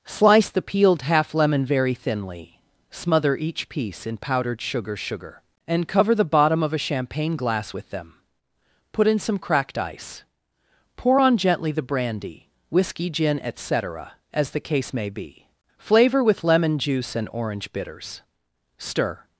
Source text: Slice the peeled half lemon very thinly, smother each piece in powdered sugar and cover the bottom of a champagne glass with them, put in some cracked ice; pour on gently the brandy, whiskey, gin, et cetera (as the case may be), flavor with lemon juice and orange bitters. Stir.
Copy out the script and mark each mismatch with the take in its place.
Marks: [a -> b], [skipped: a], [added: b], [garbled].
Slice the peeled half lemon very thinly, smother each piece in powdered sugar [added: sugar] and cover the bottom of a champagne glass with them, put in some cracked ice; pour on gently the brandy, whiskey, gin, et cetera (as the case may be), flavor with lemon juice and orange bitters. Stir.